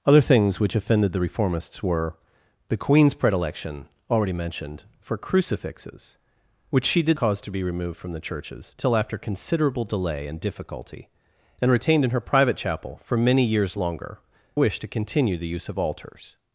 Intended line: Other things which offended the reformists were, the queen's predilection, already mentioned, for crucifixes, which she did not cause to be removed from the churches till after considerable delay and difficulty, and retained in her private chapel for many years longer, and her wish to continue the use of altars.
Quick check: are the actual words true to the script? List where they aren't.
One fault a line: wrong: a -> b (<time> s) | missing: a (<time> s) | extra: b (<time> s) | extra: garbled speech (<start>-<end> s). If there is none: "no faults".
missing: not (7.2 s)
missing: and her (14.2 s)